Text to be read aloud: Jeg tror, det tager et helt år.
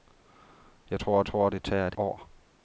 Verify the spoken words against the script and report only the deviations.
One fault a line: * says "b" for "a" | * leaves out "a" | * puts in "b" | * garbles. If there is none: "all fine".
* puts in "tror"
* leaves out "helt"